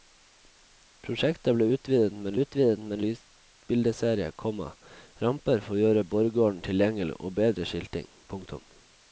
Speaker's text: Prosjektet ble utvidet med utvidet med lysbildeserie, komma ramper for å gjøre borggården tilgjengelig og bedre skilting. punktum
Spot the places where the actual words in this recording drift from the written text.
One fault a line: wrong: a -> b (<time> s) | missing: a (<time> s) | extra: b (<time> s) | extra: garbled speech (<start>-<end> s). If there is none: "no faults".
no faults